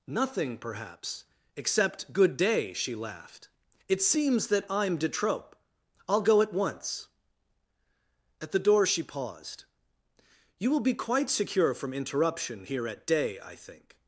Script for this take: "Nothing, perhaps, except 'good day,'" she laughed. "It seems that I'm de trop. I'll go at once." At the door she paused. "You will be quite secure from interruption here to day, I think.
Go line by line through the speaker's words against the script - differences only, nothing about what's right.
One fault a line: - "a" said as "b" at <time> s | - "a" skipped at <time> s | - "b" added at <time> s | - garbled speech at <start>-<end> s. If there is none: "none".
- "to" said as "at" at 12.9 s